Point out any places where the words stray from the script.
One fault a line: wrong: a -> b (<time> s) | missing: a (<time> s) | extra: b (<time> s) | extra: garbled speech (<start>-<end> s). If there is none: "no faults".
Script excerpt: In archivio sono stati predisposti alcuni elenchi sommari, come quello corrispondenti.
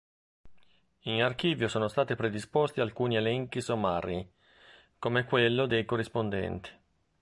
extra: dei (5.7 s)